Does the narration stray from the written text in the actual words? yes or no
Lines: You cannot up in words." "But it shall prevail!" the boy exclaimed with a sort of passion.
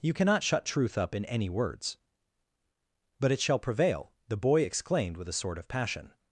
yes